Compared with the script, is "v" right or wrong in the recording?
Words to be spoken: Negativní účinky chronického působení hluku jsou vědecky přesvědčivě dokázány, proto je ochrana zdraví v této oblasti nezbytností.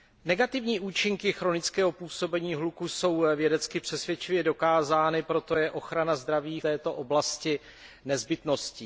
wrong